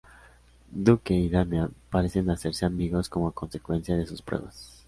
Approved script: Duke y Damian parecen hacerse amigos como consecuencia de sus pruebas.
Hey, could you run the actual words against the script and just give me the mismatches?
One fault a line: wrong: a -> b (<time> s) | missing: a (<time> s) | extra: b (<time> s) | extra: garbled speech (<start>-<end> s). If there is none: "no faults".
no faults